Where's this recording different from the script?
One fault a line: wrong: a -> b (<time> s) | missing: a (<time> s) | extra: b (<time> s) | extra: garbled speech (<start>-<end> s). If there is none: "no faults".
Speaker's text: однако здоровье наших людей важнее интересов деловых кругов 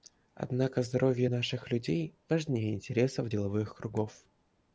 no faults